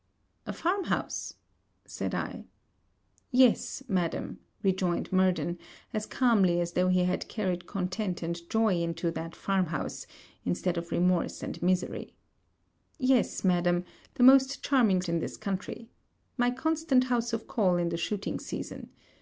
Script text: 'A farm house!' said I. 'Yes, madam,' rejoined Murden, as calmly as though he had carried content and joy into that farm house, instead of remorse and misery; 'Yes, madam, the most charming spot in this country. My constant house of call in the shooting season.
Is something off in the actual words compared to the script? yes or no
yes